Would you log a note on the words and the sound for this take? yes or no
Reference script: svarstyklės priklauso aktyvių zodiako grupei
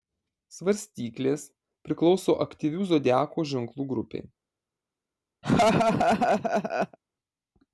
yes